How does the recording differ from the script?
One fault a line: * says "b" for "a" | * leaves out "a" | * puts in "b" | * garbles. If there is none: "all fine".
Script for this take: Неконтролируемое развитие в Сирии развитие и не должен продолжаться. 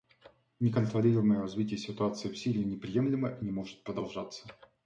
* puts in "ситуации"
* says "неприемлемо" for "развитие"
* says "может" for "должен"